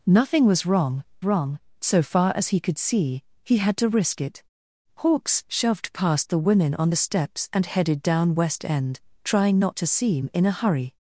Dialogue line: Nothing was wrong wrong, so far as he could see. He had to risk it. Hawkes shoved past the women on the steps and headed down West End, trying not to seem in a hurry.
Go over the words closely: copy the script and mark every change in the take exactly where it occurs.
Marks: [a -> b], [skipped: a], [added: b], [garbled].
Nothing was wrong wrong, so far as he could see. He had to risk it. Hawkes shoved past the women on the steps and headed down West End, trying not to seem in a hurry.